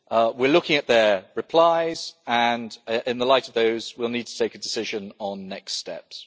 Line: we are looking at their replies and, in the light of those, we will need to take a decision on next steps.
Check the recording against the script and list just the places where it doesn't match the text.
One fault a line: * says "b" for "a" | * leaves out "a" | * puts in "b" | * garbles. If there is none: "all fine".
all fine